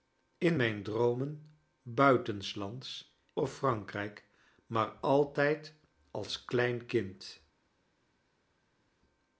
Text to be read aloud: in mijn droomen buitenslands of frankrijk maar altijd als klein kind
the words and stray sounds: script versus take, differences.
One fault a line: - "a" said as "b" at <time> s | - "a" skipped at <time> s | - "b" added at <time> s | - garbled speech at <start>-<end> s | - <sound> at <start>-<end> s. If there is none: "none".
none